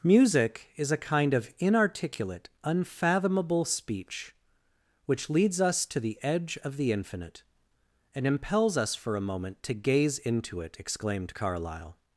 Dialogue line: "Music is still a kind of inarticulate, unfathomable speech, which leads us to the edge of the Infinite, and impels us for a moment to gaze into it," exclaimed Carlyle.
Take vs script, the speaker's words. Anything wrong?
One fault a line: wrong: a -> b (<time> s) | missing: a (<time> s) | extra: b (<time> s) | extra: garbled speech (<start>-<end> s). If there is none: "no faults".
missing: still (0.9 s)